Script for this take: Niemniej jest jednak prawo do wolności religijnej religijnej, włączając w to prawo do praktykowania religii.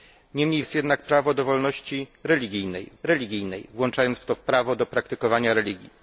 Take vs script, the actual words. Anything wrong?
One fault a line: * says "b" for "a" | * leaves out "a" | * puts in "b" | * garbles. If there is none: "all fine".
all fine